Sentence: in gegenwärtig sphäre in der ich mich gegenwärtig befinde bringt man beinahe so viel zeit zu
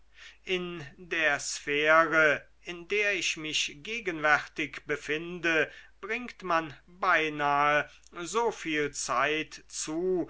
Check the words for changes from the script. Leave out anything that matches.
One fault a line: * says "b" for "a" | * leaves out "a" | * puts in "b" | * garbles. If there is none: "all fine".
* says "der" for "gegenwärtig"